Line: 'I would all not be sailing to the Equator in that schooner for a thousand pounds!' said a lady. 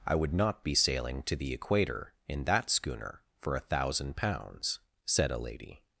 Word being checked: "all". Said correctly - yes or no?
no